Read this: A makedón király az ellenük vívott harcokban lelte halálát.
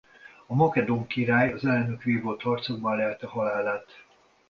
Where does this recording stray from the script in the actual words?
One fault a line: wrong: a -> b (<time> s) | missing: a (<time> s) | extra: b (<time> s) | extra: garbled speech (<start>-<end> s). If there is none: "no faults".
no faults